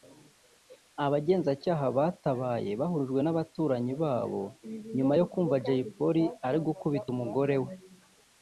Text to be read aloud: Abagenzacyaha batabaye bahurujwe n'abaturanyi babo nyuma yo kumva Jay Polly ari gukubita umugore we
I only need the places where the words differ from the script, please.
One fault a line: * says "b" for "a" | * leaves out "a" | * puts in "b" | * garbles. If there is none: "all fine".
all fine